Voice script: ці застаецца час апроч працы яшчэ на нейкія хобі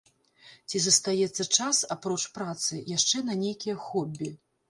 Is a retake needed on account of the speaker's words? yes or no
no